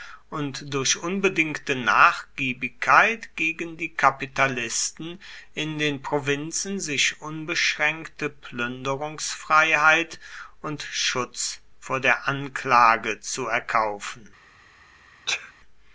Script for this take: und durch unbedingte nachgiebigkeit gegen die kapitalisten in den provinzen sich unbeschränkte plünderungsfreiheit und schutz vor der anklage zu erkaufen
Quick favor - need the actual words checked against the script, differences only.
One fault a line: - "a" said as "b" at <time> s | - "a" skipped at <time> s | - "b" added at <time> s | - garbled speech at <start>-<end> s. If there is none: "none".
none